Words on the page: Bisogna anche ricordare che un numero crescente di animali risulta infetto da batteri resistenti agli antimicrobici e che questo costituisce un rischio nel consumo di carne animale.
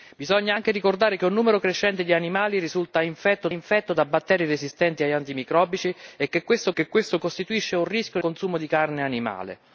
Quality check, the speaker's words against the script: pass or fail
fail